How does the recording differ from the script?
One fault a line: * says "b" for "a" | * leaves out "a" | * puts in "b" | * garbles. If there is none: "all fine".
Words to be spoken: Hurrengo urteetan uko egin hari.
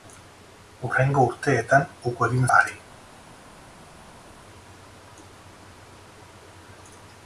all fine